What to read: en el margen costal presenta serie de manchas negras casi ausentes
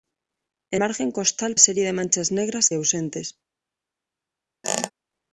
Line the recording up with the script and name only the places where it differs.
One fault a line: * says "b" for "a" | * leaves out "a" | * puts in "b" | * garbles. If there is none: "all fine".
* leaves out "el"
* leaves out "presenta"
* leaves out "casi"